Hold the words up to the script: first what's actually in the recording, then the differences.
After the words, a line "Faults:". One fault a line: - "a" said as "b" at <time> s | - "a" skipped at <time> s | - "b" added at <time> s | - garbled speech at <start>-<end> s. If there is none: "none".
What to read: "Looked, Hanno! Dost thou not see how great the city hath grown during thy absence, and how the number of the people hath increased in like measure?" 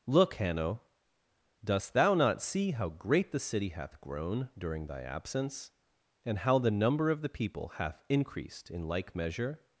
"Look, Hanno! Dost thou not see how great the city hath grown during thy absence, and how the number of the people hath increased in like measure?"
Faults:
- "Looked" said as "Look" at 0.1 s